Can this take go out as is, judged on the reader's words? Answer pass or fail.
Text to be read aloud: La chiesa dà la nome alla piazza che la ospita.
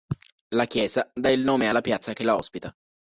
fail